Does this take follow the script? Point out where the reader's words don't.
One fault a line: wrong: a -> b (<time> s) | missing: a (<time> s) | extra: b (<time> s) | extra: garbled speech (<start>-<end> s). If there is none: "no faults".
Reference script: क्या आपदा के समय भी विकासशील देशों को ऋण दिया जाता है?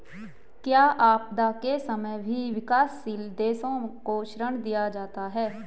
no faults